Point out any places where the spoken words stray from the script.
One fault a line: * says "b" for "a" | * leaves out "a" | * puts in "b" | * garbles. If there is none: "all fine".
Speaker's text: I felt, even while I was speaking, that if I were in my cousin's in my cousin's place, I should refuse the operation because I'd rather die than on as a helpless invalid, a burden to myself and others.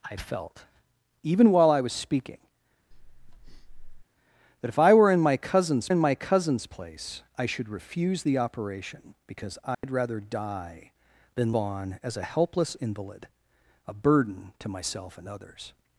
all fine